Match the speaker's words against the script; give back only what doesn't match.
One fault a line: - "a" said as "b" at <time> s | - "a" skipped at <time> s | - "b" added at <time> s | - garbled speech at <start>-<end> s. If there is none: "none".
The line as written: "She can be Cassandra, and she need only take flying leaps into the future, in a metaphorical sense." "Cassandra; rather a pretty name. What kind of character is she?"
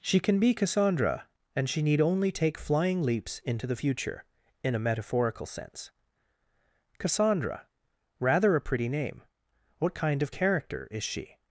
none